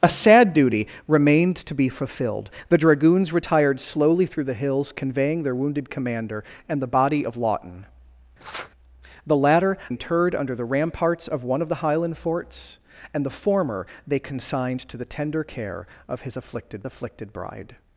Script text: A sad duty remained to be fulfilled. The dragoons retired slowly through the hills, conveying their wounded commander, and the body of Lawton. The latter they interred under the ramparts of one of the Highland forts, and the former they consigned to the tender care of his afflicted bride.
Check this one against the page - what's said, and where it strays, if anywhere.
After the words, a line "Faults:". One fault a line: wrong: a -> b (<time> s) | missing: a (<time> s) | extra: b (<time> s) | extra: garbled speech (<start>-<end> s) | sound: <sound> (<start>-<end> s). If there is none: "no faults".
A sad duty remained to be fulfilled. The dragoons retired slowly through the hills, conveying their wounded commander, and the body of Lawton. The latter interred under the ramparts of one of the Highland forts, and the former they consigned to the tender care of his afflicted afflicted bride.
Faults:
sound: sniff (8.4-8.7 s)
missing: they (9.8 s)
extra: afflicted (16.8 s)